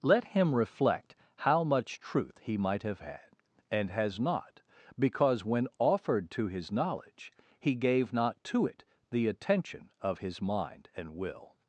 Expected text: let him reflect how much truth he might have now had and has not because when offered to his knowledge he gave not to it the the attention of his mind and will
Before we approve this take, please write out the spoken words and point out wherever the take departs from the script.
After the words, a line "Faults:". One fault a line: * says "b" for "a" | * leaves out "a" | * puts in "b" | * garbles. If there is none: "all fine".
let him reflect how much truth he might have had and has not because when offered to his knowledge he gave not to it the attention of his mind and will
Faults:
* leaves out "now"
* leaves out "the"